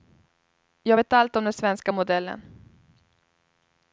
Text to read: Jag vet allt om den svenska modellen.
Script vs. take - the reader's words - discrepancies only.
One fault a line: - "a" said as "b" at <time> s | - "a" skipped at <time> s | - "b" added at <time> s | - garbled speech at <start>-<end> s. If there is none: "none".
none